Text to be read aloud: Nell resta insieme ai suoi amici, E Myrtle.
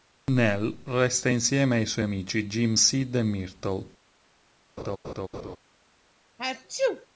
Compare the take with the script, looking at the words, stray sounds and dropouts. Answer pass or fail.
fail